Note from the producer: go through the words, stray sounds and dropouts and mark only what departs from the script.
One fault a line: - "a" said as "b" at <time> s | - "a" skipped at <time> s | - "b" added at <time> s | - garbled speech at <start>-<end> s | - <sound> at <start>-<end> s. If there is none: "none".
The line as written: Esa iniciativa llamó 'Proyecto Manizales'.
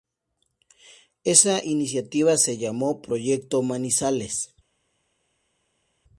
- "se" added at 2.4 s